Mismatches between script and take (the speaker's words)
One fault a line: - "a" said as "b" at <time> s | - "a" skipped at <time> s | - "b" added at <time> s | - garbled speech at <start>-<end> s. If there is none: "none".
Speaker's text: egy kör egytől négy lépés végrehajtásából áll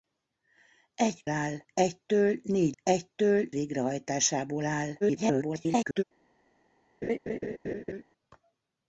- "kör" said as "áll" at 1.3 s
- "lépés" said as "egytől" at 2.8 s
- garbled speech at 5.0-6.0 s